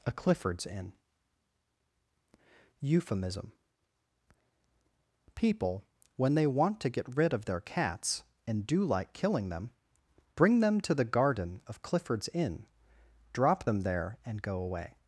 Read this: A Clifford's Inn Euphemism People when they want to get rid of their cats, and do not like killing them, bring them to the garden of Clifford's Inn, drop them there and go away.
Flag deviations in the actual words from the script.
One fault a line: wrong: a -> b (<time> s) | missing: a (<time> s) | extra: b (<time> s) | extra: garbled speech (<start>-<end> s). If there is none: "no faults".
missing: not (8.8 s)